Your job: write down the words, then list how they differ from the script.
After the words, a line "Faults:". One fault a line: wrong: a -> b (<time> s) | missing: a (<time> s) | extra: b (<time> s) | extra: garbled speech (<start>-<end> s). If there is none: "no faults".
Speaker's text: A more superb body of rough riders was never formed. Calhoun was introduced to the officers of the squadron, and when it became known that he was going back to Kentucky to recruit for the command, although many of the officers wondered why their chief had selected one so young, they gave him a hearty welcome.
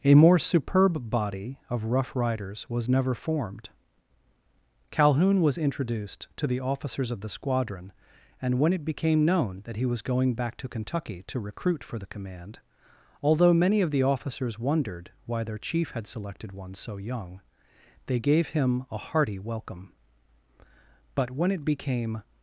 A more superb body of rough riders was never formed. Calhoun was introduced to the officers of the squadron, and when it became known that he was going back to Kentucky to recruit for the command, although many of the officers wondered why their chief had selected one so young, they gave him a hearty welcome. But when it became
Faults:
extra: But when it became (21.2 s)